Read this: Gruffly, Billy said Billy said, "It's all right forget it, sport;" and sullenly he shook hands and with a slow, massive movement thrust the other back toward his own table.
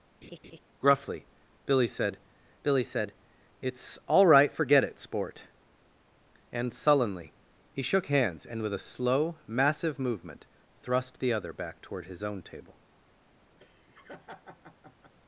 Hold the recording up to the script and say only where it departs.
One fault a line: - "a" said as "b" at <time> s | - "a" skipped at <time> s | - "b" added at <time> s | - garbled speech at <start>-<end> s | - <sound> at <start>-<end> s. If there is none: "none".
- laugh at 0.2-0.6 s
- laugh at 13.6-15.1 s